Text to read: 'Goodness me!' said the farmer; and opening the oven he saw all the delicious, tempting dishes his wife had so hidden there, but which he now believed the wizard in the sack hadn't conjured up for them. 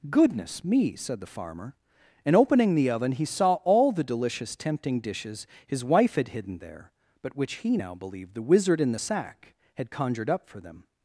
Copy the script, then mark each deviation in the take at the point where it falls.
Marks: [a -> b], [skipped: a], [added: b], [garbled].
'Goodness me!' said the farmer; and opening the oven he saw all the delicious, tempting dishes his wife had [skipped: so] hidden there, but which he now believed the wizard in the sack [hadn't -> had] conjured up for them.